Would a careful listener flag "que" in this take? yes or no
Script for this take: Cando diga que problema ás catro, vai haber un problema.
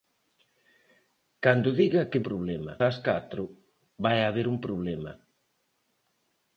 no